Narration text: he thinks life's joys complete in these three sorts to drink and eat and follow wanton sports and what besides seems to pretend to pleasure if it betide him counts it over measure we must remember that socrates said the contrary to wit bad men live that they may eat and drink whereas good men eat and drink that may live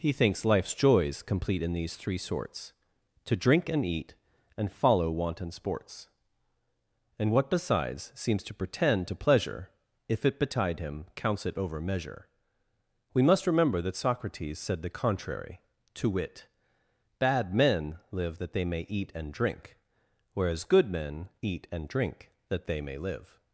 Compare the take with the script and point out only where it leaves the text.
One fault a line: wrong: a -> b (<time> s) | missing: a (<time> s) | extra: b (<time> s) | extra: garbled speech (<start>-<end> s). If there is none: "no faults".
extra: they (22.6 s)